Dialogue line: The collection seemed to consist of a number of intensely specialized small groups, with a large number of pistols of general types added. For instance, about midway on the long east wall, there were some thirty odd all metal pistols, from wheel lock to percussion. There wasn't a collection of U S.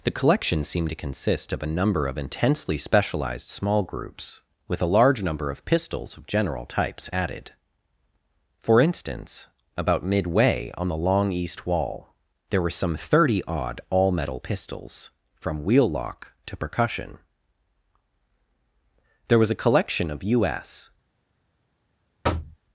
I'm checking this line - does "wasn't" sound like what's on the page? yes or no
no